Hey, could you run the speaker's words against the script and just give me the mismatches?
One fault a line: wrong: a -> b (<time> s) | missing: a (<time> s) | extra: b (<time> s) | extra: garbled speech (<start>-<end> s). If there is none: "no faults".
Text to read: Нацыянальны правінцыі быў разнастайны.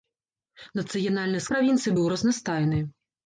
no faults